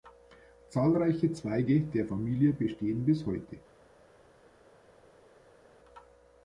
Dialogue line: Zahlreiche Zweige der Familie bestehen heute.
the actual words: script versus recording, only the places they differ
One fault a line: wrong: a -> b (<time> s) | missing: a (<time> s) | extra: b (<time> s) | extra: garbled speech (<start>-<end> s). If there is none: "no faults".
extra: bis (3.0 s)